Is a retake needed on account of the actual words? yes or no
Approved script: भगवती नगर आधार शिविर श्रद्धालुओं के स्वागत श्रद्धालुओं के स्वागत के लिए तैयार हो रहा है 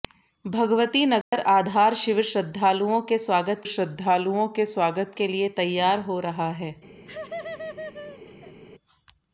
no